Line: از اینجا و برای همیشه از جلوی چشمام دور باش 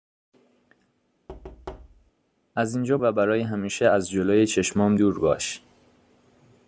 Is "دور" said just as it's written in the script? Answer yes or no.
yes